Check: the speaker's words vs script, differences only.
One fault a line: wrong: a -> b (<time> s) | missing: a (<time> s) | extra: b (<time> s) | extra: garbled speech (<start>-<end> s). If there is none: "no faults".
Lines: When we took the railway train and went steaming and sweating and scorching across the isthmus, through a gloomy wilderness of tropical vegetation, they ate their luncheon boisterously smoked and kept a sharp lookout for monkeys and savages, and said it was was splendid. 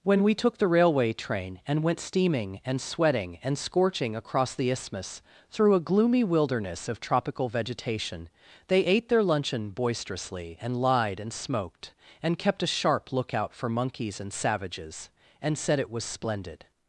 extra: and lied and (10.6 s)
missing: was (16.1 s)